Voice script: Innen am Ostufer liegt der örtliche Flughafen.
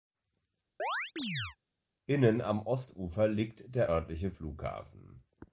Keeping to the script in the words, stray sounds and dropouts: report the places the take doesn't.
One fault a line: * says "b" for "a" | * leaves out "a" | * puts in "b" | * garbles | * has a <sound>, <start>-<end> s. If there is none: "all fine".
* has a chirp, 0.8-1.6 s